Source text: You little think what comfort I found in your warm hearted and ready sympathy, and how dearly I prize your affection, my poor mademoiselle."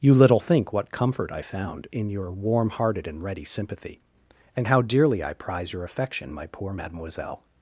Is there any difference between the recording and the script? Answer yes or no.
no